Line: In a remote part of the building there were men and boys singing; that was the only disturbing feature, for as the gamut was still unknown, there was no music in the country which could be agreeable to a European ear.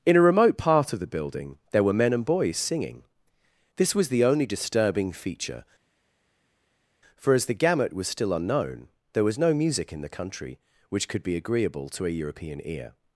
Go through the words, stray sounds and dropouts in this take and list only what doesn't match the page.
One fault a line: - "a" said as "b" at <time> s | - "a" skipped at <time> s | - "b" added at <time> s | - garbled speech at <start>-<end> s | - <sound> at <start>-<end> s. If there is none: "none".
- "that" said as "this" at 3.8 s